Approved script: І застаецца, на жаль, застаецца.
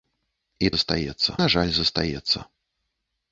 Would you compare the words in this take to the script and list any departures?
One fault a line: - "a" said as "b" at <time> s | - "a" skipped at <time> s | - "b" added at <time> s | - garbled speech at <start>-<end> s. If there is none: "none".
none